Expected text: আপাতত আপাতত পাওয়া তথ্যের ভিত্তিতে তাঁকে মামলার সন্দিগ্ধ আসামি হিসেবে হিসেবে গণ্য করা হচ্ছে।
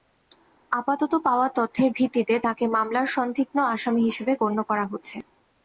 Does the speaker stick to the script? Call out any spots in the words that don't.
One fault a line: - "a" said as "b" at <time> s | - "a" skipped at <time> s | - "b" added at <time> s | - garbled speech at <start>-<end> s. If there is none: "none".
- "আপাতত" skipped at 1.1 s
- "হিসেবে" skipped at 4.3 s